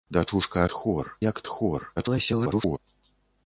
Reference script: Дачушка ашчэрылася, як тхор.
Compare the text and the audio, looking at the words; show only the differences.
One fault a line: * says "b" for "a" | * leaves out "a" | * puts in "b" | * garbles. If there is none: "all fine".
* says "тхор" for "ашчэрылася"
* garbles